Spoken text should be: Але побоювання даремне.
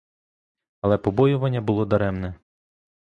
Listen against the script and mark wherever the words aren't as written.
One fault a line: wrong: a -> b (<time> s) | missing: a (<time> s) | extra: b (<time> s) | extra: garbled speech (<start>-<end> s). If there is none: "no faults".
extra: було (1.6 s)